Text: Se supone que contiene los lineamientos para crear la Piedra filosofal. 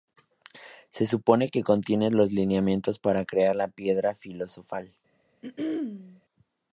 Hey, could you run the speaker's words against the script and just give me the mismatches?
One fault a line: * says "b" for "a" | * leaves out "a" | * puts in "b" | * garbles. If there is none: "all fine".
all fine